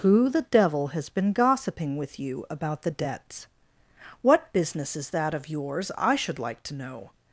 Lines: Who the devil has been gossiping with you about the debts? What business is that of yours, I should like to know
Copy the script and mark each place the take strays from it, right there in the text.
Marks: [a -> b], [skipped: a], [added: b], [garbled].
Who the devil has been gossiping with you about the debts? What business is that of yours, I should like to know